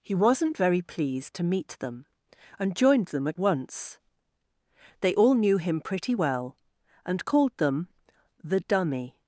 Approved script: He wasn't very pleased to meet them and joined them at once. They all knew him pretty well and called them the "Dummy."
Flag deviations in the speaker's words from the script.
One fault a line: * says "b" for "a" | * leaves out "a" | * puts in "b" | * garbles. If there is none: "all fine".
all fine